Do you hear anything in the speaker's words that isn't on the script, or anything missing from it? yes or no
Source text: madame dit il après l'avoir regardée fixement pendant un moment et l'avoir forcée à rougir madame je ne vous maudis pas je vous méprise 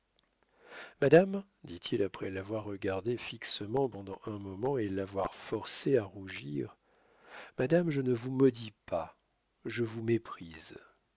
no